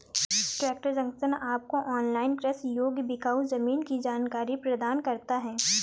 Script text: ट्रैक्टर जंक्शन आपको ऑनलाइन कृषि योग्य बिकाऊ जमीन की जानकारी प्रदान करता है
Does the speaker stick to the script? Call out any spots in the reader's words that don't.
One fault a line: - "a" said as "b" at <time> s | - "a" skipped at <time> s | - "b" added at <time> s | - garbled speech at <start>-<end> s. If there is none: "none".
none